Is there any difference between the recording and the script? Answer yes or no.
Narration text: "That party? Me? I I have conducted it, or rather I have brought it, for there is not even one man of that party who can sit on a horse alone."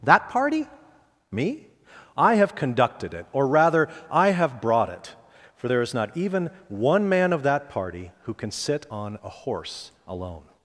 yes